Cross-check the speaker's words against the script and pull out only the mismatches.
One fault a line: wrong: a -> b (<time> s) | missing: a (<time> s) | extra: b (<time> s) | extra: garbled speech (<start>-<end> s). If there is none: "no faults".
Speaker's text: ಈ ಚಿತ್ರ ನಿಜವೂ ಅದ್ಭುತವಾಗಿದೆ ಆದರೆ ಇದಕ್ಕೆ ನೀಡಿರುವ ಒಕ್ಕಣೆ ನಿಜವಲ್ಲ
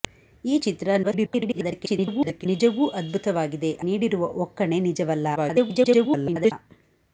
extra: garbled speech (1.0-2.5 s)
missing: ಆದರೆ ಇದಕ್ಕೆ (3.7 s)
extra: garbled speech (5.4-6.5 s)